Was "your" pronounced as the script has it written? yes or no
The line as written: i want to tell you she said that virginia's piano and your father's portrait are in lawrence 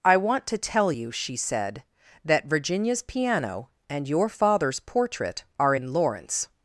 yes